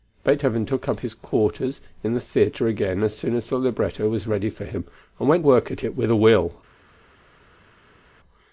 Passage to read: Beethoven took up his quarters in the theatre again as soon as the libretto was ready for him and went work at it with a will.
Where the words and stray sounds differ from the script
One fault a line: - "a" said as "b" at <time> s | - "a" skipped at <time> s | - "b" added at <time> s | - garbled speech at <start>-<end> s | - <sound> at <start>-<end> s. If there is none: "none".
none